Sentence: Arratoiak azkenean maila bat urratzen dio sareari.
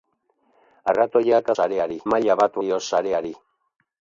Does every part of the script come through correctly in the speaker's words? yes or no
no